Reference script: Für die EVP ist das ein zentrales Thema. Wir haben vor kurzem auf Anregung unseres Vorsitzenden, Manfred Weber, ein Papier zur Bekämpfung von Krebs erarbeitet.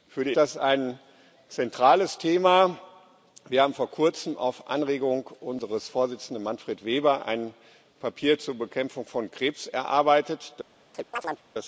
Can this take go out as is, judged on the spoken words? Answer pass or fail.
fail